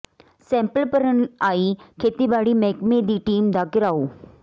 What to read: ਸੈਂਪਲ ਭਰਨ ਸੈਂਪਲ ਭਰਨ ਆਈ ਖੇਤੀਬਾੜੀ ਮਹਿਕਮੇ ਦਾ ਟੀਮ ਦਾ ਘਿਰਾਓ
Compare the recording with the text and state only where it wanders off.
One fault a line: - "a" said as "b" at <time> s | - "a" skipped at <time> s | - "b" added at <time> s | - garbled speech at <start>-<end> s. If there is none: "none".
- "ਸੈਂਪਲ ਭਰਨ" skipped at 1.2 s
- "ਦਾ" said as "ਦੀ" at 3.0 s